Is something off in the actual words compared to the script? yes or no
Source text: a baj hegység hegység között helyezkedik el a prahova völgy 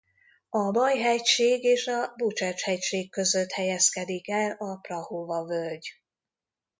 yes